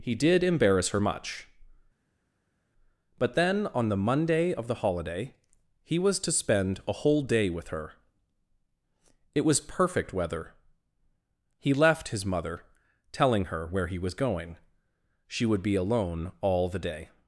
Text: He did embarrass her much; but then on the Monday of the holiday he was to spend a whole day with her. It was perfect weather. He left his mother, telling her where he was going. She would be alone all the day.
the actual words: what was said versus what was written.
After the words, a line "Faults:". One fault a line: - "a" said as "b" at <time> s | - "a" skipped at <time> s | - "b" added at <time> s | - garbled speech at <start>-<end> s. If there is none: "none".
He did embarrass her much; but then on the Monday of the holiday he was to spend a whole day with her. It was perfect weather. He left his mother, telling her where he was going. She would be alone all the day.
Faults:
none